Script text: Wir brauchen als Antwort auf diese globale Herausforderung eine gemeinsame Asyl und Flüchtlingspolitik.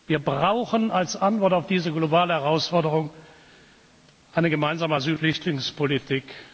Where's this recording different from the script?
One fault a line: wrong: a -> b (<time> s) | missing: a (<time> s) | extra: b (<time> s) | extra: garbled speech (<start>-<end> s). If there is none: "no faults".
missing: und (5.2 s)